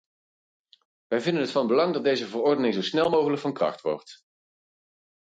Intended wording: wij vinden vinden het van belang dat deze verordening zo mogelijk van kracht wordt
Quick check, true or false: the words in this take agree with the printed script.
false